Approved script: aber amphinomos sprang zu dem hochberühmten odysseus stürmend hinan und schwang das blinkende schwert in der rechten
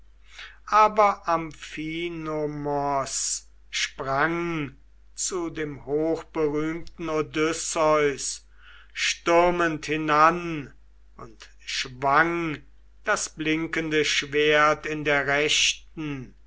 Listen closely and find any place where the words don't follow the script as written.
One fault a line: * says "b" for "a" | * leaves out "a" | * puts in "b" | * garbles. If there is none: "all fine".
all fine